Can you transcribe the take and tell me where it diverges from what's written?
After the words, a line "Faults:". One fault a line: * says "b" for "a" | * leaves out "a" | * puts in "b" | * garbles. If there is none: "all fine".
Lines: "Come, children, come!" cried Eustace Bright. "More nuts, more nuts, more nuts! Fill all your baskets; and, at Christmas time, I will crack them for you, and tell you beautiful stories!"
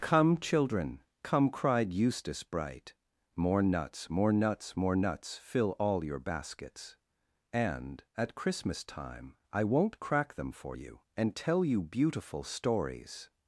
"Come, children, come!" cried Eustace Bright. "More nuts, more nuts, more nuts! Fill all your baskets; and, at Christmas time, I won't crack them for you, and tell you beautiful stories!"
Faults:
* says "won't" for "will"